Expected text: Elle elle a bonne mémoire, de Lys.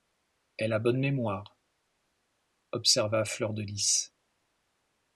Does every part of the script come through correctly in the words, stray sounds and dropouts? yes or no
no